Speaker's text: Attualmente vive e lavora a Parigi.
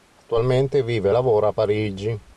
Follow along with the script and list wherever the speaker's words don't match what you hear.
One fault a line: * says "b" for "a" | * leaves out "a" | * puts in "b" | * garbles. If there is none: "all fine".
all fine